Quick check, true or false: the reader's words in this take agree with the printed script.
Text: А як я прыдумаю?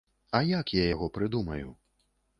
false